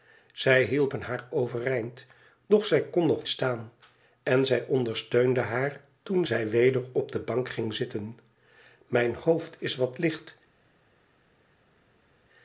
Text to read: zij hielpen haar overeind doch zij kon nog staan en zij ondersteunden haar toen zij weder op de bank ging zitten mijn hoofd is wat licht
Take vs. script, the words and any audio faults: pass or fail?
pass